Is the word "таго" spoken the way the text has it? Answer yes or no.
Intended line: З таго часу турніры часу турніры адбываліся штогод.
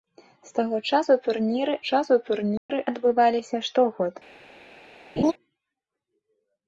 yes